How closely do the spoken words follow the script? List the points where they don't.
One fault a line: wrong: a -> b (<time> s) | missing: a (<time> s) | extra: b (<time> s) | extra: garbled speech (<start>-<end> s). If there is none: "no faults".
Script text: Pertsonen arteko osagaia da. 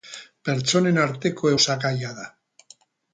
no faults